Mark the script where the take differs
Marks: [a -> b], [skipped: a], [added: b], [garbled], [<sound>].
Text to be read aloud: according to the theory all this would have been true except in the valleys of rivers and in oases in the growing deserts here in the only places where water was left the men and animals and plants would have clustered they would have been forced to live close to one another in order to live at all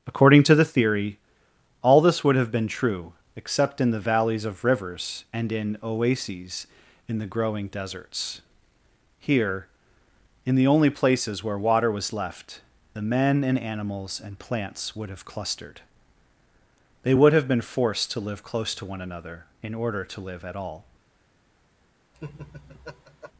according to the theory all this would have been true except in the valleys of rivers and in oases in the growing deserts here in the only places where water was left the men and animals and plants would have clustered they would have been forced to live close to one another in order to live at all [laugh]